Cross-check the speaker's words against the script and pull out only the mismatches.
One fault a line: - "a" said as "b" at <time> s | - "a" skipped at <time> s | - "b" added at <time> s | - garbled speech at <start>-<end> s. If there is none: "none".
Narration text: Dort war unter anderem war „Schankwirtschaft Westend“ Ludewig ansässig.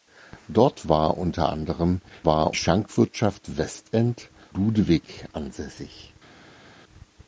none